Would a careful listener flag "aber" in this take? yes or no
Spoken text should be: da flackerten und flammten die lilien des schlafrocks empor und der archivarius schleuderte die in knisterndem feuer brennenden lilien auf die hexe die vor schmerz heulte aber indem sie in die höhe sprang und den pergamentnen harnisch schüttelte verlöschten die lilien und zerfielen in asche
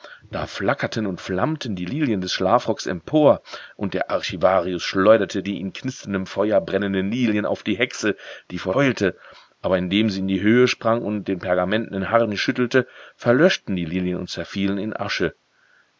no